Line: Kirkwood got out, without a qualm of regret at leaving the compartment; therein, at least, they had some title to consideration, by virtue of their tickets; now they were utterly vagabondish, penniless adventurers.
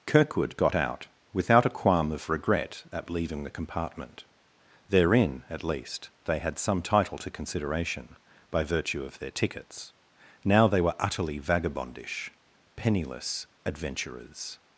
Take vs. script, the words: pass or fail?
pass